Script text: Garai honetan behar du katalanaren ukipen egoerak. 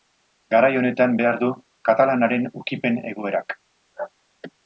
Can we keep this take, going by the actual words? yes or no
yes